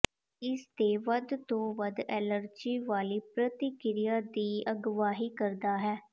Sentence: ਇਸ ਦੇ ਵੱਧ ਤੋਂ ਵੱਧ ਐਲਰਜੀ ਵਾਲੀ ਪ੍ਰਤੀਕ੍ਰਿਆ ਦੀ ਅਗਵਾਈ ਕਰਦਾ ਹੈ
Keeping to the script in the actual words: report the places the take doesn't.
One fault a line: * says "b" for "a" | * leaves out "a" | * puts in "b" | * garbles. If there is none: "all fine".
all fine